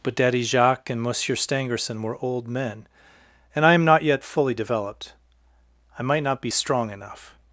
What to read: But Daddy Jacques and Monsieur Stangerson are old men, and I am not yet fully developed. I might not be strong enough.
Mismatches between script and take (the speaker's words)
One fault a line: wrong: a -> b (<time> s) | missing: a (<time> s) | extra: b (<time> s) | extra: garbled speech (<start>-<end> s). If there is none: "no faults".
wrong: are -> were (2.0 s)